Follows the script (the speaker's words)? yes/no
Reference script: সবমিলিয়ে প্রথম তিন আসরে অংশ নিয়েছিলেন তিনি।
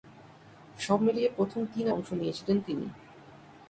no